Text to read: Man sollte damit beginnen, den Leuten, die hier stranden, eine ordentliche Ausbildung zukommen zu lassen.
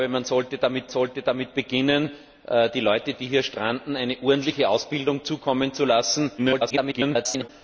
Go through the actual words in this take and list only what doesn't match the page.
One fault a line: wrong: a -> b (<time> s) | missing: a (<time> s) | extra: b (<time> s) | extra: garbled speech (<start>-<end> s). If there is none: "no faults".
extra: sollte damit (0.9 s)
extra: garbled speech (6.4-7.5 s)